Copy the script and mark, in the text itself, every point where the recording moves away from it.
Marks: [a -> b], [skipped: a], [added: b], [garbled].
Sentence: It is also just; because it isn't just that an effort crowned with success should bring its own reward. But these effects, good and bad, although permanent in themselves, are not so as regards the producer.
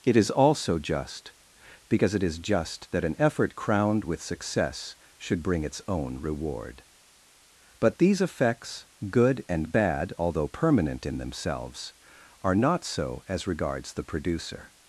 It is also just; because it [isn't -> is] just that an effort crowned with success should bring its own reward. But these effects, good and bad, although permanent in themselves, are not so as regards the producer.